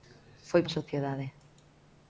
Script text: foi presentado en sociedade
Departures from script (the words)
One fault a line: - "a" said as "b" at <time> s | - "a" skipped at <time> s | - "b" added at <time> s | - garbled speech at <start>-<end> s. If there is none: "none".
- "presentado" skipped at 0.6 s